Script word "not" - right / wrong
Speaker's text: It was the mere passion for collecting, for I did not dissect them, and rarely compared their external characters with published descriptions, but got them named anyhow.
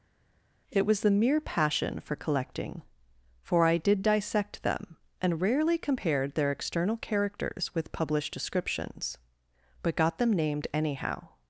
wrong